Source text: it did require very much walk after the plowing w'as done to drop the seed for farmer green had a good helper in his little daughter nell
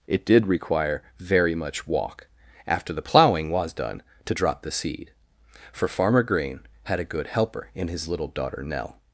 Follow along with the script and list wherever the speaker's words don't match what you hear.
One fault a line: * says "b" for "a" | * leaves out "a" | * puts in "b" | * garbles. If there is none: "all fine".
all fine